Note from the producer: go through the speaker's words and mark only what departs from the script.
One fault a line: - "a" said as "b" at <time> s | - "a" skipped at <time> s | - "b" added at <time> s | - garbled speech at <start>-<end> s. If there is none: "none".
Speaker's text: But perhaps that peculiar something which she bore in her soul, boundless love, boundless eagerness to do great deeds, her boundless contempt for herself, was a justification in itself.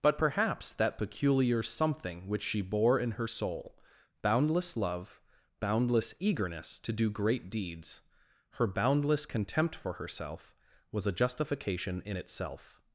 none